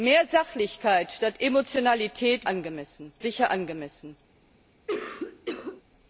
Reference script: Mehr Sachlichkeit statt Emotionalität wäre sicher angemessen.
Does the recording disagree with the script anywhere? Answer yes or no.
yes